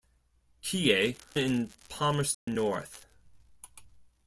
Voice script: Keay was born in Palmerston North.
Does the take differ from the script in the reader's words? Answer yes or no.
yes